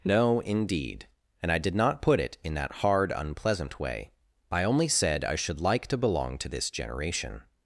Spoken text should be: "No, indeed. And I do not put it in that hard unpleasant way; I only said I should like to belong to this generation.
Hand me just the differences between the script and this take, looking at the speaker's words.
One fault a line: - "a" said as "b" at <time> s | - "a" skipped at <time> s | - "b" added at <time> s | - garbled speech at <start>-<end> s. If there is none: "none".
- "do" said as "did" at 1.6 s